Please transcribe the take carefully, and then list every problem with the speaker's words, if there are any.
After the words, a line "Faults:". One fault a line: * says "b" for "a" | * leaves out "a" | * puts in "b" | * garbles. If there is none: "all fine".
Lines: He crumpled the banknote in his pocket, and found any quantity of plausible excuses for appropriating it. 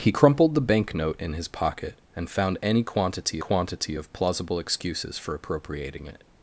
He crumpled the banknote in his pocket, and found any quantity quantity of plausible excuses for appropriating it.
Faults:
* puts in "quantity"